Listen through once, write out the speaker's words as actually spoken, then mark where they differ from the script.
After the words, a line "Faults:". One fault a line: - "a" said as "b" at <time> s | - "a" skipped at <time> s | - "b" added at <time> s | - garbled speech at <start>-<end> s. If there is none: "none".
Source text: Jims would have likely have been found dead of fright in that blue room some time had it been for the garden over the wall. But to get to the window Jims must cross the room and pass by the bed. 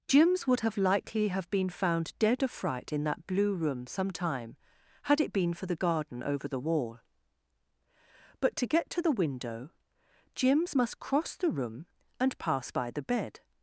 Jims would have likely have been found dead of fright in that blue room some time had it been for the garden over the wall. But to get to the window Jims must cross the room and pass by the bed.
Faults:
none